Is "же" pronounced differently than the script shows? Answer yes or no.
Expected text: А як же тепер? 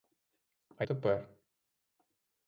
yes